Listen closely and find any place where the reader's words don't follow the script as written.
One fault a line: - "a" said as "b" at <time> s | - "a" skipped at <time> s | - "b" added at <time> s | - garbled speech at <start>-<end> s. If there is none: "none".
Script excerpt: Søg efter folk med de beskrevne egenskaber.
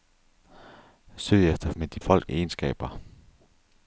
- "folk" skipped at 1.7 s
- "beskrevne" said as "folk" at 2.0 s